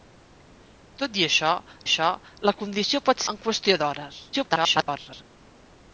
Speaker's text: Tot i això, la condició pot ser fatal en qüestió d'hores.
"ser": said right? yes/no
no